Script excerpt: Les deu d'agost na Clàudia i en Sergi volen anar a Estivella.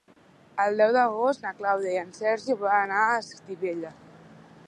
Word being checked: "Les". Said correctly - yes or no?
no